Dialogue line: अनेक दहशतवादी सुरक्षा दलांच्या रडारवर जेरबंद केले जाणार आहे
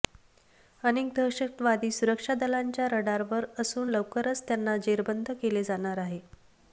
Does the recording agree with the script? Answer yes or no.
no